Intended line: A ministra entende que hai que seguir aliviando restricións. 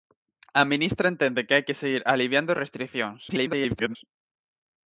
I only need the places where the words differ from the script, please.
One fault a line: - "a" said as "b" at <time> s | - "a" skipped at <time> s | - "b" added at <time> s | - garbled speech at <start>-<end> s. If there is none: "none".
- garbled speech at 3.3-4.0 s